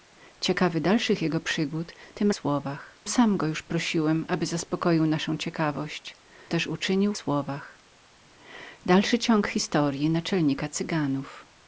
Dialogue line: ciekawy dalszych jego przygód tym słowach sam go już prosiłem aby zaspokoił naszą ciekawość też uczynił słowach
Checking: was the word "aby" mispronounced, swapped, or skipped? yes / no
no